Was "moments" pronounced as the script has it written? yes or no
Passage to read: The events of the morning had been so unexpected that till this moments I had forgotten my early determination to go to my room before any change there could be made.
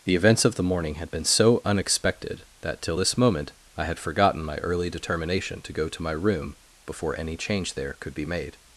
no